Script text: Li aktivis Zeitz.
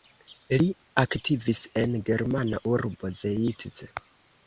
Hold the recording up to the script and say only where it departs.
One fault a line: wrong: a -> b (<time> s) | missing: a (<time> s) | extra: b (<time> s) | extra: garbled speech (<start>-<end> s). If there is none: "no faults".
extra: en germana urbo (1.8 s)